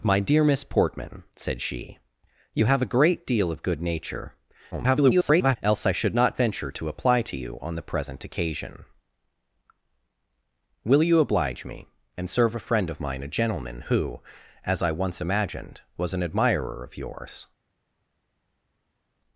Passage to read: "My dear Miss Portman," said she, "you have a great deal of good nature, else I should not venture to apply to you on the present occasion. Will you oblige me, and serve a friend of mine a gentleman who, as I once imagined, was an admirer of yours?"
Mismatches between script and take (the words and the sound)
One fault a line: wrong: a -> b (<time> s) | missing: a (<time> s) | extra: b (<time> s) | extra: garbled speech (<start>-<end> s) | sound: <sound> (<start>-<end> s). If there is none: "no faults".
extra: garbled speech (4.7-5.6 s)